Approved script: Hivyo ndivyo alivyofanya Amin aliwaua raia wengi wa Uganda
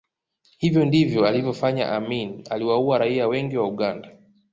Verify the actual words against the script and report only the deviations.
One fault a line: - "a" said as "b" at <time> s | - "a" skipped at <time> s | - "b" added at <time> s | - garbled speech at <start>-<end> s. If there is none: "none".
none